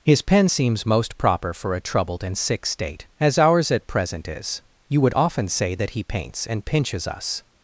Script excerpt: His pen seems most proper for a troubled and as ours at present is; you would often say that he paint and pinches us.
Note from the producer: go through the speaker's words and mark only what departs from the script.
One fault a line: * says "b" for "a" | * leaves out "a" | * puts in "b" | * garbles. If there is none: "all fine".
* puts in "sick state"
* says "paints" for "paint"